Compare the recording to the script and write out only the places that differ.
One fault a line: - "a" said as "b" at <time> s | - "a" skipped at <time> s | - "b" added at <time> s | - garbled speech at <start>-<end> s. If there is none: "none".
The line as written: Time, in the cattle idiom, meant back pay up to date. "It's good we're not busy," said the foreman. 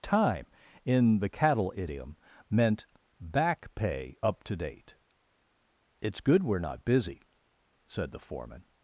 none